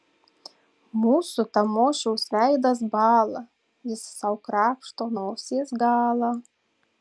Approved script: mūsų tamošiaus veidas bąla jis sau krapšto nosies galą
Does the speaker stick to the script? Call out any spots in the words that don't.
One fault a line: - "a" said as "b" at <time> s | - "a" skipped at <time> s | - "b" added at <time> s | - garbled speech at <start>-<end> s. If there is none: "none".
none